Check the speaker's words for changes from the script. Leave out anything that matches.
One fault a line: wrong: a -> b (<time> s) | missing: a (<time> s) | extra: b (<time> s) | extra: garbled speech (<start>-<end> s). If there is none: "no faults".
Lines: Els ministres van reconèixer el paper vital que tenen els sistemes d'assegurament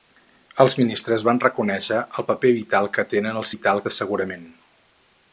wrong: sistemes -> vital (3.5 s)